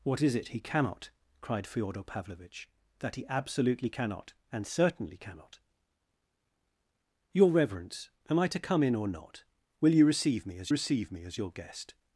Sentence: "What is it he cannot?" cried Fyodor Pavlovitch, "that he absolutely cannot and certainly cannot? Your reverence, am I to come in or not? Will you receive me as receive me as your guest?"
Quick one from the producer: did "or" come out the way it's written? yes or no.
yes